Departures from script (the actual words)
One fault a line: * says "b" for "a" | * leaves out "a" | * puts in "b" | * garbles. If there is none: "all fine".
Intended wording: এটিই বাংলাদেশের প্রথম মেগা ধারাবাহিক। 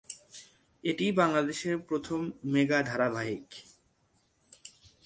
all fine